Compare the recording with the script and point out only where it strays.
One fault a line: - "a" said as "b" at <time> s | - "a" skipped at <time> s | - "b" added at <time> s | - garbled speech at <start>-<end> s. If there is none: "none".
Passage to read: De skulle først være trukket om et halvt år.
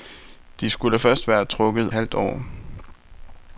- "om et" skipped at 1.9 s